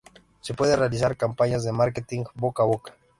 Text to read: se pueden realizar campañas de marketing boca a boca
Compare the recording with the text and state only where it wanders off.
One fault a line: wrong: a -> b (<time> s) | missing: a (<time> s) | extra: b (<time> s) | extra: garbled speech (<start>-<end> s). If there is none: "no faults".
no faults